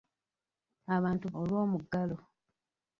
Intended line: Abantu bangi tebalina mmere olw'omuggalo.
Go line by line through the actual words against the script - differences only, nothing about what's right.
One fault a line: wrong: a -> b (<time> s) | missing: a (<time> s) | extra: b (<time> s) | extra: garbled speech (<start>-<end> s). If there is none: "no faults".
missing: bangi tebalina mmere (1.2 s)